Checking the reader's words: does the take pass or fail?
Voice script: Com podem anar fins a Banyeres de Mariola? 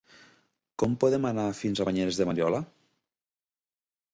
pass